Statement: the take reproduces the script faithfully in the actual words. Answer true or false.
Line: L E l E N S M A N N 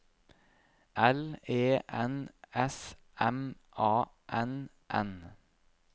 false